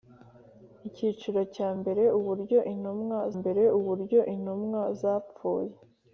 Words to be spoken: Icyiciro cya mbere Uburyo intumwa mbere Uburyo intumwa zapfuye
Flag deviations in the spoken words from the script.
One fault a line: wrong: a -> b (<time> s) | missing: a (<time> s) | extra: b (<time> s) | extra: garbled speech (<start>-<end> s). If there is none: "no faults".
no faults